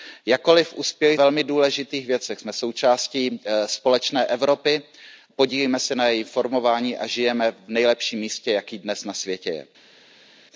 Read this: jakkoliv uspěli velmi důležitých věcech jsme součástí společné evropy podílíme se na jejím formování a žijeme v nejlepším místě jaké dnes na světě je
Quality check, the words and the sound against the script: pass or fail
pass